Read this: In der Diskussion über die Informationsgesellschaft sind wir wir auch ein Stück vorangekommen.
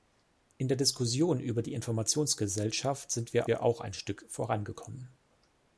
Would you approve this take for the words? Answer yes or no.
yes